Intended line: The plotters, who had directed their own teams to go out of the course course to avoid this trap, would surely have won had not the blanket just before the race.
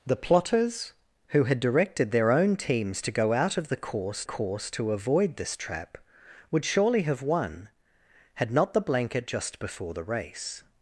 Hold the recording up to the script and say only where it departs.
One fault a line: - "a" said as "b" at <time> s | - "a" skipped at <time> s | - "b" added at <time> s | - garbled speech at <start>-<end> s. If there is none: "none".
none